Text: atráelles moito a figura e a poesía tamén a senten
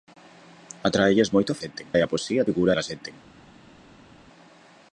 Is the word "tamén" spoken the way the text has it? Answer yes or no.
no